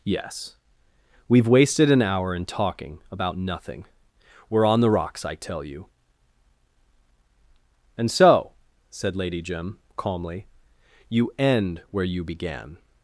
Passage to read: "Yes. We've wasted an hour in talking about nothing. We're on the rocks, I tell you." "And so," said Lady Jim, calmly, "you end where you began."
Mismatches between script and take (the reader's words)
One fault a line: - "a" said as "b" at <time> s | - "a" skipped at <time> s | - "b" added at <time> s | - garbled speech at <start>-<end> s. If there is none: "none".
none